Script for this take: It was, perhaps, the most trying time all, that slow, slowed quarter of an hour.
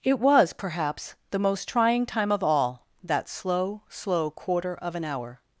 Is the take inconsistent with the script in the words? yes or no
yes